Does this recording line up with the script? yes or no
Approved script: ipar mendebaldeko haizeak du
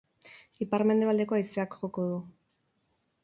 no